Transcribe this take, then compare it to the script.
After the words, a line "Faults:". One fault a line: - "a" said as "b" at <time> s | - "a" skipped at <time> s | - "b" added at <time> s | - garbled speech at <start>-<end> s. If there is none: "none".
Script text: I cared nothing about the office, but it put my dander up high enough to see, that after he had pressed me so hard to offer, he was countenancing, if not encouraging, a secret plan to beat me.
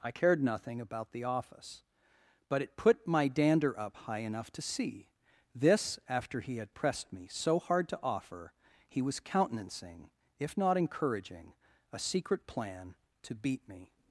I cared nothing about the office, but it put my dander up high enough to see, this after he had pressed me so hard to offer, he was countenancing, if not encouraging, a secret plan to beat me.
Faults:
- "that" said as "this" at 5.5 s